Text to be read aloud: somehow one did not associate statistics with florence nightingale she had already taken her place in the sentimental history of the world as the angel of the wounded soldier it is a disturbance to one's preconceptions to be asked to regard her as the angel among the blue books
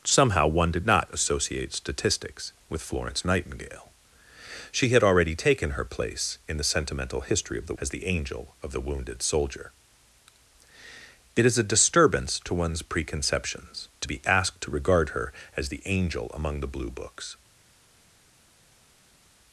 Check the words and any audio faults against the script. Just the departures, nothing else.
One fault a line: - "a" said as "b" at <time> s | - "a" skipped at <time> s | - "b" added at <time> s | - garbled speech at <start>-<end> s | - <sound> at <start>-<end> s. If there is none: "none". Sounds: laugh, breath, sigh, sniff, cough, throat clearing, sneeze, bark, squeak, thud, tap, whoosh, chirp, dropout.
- "world" skipped at 7.8 s